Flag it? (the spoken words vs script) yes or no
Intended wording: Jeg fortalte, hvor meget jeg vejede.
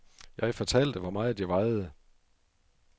no